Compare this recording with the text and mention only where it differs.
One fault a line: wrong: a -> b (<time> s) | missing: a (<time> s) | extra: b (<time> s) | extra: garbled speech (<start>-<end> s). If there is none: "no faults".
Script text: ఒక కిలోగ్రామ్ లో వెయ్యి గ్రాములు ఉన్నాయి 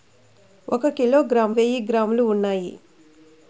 missing: లో (1.6 s)